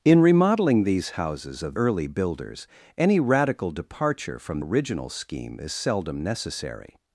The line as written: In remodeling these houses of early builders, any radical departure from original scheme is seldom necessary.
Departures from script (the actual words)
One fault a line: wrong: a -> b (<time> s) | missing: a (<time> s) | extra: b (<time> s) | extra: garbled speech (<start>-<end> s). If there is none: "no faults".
no faults